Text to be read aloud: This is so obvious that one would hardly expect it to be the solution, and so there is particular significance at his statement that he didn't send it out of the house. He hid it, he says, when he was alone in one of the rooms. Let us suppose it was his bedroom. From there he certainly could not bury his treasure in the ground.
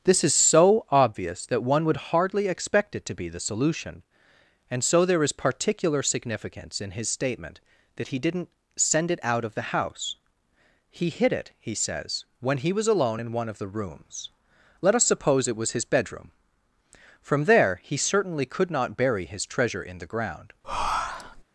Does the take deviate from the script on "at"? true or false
true